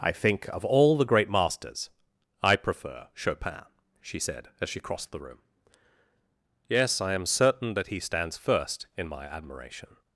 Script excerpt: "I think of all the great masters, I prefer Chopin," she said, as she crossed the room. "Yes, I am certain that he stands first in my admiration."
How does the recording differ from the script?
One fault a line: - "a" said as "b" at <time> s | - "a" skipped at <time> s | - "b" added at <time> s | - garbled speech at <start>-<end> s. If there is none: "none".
none